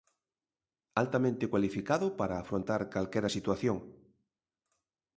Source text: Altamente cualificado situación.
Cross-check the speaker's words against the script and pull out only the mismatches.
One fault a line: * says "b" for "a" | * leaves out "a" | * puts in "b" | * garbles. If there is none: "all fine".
* puts in "para afrontar calquera"